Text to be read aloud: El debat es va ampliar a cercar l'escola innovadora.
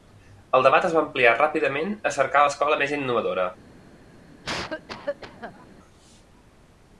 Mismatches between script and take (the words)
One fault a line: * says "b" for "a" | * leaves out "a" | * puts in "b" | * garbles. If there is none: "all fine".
* puts in "ràpidament"
* puts in "més"